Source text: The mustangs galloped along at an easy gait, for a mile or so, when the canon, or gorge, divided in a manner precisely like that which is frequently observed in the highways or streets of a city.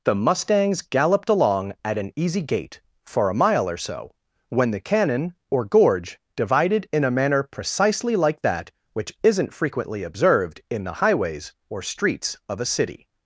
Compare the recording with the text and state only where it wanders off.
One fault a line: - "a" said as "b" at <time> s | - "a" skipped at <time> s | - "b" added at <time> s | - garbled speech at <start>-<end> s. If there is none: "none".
- "is" said as "isn't" at 9.2 s